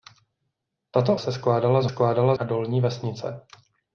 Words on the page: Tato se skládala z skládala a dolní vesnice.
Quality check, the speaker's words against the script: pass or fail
pass